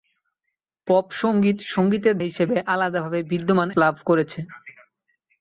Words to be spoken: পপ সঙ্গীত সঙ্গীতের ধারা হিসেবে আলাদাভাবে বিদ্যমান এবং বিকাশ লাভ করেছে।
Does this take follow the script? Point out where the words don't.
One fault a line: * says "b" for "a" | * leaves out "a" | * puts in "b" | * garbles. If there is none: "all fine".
* leaves out "ধারা"
* leaves out "এবং বিকাশ"